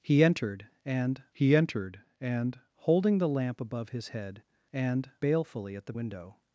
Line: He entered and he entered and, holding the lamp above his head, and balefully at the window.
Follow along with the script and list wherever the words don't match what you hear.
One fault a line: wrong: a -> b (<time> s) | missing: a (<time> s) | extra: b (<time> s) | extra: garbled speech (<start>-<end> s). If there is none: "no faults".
no faults